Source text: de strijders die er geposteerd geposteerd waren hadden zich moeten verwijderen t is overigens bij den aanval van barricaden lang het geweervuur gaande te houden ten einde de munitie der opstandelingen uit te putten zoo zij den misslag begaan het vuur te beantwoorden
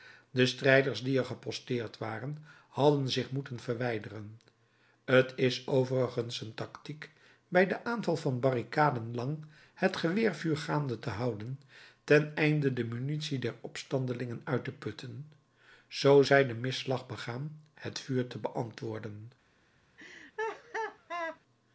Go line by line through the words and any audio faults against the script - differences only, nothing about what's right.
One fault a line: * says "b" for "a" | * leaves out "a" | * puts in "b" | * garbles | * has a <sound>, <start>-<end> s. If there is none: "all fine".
* leaves out "geposteerd"
* puts in "een tactiek"
* has a laugh, 20.0-21.4 s